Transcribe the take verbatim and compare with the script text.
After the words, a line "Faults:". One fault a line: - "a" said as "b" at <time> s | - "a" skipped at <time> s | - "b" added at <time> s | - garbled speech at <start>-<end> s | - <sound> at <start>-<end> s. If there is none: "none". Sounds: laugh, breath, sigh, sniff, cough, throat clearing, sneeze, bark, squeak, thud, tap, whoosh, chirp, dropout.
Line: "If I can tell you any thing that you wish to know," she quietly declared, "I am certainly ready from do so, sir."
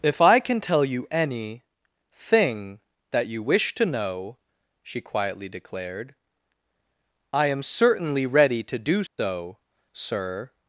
"If I can tell you any thing that you wish to know," she quietly declared, "I am certainly ready to do so, sir."
Faults:
- "from" said as "to" at 8.6 s
- dropout at 9.1-9.2 s